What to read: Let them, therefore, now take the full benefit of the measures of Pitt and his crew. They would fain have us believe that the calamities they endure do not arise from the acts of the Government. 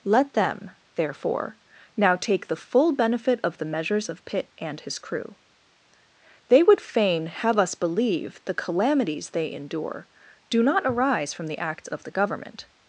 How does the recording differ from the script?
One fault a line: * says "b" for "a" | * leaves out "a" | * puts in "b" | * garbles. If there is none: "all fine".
* leaves out "that"